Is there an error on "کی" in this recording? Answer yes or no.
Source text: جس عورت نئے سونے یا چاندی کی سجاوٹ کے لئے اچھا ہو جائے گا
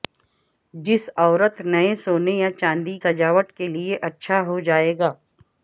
yes